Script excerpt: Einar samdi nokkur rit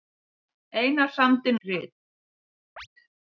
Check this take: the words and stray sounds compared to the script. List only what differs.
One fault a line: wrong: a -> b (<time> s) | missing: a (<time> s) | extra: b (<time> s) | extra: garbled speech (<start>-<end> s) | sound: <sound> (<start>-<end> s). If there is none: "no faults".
missing: nokkur (1.6 s)
sound: chirp (2.8-2.9 s)